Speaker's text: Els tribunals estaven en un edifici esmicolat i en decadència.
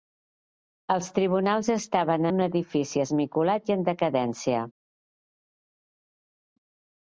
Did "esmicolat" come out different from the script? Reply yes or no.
no